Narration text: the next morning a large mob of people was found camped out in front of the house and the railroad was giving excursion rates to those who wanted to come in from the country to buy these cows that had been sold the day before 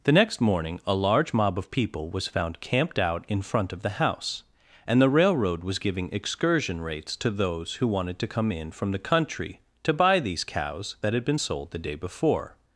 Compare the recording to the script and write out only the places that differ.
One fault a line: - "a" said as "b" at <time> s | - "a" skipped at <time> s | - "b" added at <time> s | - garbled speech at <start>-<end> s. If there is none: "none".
none